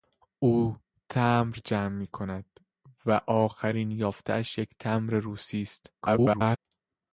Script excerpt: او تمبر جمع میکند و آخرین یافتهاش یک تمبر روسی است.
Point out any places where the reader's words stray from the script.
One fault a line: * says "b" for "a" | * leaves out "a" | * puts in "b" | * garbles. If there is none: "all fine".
* garbles